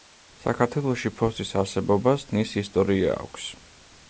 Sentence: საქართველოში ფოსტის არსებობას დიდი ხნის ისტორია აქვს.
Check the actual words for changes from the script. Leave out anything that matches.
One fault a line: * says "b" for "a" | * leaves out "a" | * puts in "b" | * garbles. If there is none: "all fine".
* leaves out "დიდი"